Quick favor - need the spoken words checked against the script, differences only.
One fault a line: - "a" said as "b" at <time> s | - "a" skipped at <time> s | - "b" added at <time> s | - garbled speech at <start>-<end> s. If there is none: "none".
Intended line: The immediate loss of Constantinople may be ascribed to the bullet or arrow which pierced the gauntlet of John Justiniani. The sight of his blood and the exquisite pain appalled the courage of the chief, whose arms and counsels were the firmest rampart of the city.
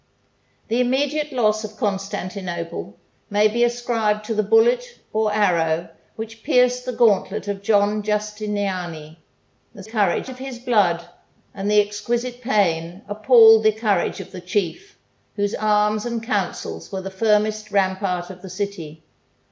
- "sight" said as "courage" at 9.8 s